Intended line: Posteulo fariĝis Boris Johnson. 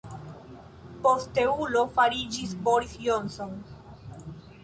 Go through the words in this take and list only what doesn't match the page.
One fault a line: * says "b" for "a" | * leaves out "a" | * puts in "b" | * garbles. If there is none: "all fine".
all fine